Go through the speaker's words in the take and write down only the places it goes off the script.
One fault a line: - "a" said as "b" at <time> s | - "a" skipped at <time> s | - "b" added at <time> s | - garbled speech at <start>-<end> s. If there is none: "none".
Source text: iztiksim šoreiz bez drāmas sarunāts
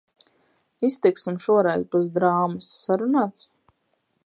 none